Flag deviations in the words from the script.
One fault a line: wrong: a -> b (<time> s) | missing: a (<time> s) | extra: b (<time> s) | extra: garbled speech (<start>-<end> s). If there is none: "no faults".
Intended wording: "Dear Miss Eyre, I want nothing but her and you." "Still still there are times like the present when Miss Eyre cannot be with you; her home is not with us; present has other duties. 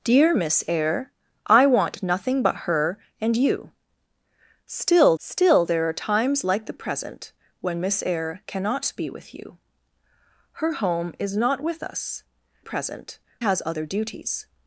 no faults